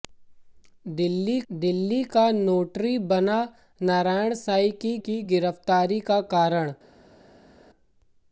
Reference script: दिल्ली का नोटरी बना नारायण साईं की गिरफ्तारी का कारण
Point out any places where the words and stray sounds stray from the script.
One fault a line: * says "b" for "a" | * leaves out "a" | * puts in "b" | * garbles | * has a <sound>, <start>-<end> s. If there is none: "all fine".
* puts in "दिल्ली"
* puts in "की"